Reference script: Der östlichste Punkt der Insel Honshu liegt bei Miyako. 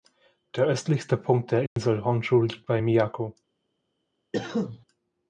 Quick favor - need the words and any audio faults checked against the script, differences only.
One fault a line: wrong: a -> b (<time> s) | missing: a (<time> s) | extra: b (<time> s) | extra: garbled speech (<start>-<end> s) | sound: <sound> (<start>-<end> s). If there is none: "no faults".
sound: dropout (1.7-1.8 s)
sound: cough (4.3-4.8 s)